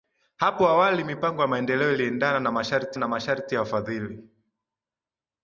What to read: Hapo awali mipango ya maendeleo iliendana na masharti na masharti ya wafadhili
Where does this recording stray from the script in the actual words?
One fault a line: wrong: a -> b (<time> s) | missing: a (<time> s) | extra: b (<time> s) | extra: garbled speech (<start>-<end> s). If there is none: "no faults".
no faults